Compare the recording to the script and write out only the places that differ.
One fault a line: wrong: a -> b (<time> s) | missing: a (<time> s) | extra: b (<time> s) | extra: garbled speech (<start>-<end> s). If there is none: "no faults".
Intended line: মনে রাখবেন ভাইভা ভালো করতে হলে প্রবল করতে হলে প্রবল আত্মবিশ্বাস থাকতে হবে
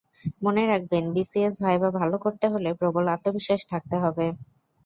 extra: বিসিএস (1.1 s)
missing: করতে হলে প্রবল (3.0 s)